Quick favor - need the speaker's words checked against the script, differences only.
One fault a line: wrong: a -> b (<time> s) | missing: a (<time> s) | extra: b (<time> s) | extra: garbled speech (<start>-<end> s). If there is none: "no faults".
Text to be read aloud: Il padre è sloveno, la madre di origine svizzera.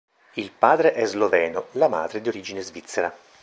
no faults